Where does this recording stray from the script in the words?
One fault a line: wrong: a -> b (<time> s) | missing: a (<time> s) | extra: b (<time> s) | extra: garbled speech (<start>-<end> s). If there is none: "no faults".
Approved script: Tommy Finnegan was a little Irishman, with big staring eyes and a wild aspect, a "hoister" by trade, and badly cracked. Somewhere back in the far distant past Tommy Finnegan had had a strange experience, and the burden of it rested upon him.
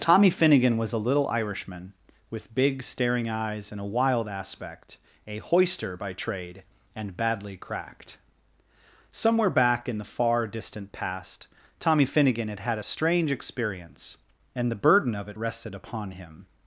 no faults